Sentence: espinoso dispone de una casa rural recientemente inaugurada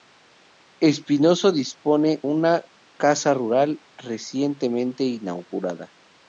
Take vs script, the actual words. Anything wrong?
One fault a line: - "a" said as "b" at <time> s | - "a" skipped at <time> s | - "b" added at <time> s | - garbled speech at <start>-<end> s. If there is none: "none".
- "de" skipped at 2.2 s